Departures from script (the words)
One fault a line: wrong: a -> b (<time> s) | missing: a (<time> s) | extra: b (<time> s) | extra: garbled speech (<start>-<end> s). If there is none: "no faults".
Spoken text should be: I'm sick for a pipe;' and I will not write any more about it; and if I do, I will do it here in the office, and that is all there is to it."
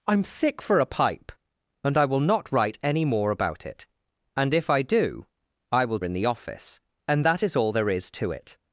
missing: do it here (6.0 s)